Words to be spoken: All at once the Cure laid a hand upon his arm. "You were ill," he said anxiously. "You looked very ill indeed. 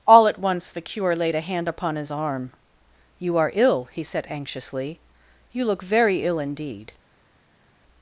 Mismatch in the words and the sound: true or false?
true